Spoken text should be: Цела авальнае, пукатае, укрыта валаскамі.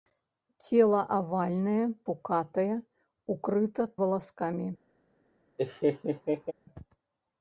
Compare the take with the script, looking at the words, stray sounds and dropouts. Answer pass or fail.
fail